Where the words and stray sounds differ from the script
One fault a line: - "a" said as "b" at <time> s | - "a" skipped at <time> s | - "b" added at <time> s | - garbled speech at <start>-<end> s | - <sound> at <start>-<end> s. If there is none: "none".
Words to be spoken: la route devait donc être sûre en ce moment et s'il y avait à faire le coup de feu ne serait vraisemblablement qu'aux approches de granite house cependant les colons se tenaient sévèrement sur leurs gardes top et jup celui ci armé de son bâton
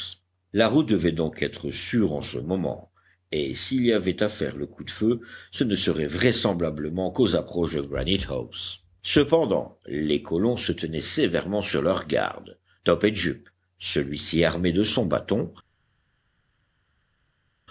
- "ce" added at 5.5 s